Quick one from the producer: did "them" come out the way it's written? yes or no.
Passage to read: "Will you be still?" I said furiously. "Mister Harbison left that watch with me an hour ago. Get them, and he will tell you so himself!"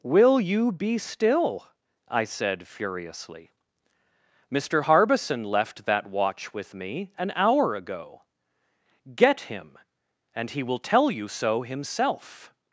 no